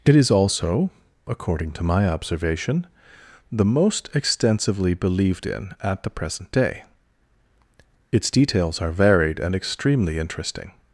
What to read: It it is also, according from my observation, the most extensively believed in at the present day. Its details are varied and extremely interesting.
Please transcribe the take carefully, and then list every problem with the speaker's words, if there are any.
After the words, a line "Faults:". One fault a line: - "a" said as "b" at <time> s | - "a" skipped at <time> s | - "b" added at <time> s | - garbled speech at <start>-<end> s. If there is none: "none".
It is also, according to my observation, the most extensively believed in at the present day. Its details are varied and extremely interesting.
Faults:
- "it" skipped at 0.1 s
- "from" said as "to" at 1.7 s